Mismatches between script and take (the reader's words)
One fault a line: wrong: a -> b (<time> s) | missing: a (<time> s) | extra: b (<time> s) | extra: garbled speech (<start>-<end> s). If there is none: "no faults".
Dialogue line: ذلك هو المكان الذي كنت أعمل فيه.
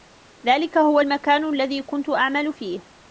no faults